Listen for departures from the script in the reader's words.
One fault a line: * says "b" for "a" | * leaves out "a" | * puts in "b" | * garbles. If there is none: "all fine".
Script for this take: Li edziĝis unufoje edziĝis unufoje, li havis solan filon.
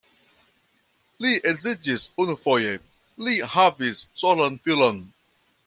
* leaves out "edziĝis unufoje"